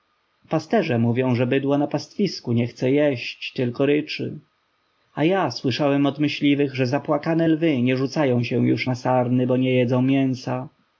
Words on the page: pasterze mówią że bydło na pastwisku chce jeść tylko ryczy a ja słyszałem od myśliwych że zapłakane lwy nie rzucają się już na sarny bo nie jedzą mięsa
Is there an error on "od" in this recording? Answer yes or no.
no